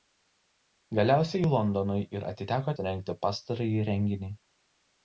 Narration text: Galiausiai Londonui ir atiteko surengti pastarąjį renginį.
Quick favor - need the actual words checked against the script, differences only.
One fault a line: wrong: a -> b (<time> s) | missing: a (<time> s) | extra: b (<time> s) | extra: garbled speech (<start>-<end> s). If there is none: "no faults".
no faults